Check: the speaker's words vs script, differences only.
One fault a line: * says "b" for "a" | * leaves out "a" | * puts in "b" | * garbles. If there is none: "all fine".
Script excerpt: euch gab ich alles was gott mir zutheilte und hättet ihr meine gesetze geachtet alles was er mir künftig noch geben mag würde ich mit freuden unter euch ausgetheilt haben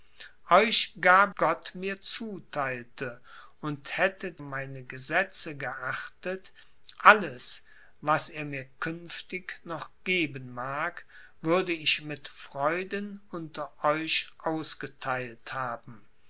* leaves out "ich alles was"
* leaves out "ihr"